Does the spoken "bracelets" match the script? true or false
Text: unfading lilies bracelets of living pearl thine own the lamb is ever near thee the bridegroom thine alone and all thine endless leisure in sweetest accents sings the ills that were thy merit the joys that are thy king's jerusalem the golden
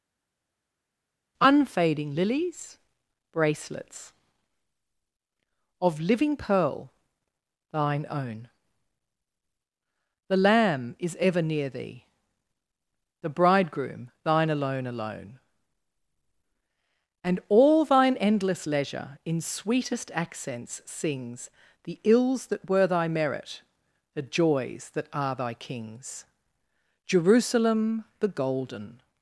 true